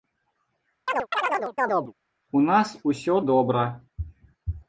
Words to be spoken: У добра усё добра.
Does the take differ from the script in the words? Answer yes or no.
yes